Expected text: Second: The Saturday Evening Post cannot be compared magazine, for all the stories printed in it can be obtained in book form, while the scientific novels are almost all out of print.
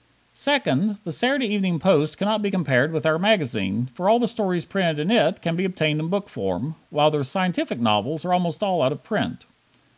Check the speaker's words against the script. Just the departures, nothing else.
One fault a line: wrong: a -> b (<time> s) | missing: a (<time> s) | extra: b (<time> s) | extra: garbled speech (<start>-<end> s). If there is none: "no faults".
extra: with our (2.9 s)